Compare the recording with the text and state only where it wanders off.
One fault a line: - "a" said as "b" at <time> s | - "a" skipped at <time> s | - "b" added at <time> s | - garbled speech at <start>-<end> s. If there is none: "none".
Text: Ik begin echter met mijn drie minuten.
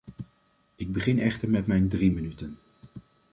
none